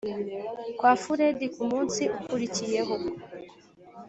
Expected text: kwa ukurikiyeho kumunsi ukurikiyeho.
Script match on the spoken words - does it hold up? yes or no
no